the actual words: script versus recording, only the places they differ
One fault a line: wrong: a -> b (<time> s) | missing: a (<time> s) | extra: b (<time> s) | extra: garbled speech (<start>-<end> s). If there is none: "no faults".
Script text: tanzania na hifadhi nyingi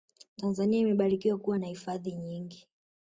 extra: imebarikiwa kuwa (0.8 s)